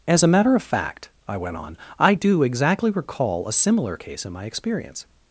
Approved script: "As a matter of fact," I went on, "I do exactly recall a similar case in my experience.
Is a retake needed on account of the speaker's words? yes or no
no